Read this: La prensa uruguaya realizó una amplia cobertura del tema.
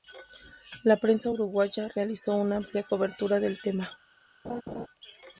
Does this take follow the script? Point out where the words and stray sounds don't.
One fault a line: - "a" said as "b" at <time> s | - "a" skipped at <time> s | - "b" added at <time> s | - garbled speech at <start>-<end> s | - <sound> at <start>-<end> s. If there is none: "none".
- laugh at 4.4-4.9 s